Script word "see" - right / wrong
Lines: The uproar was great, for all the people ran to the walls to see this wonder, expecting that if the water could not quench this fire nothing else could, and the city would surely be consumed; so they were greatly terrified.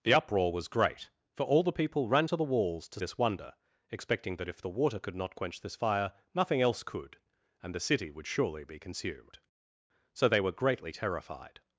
wrong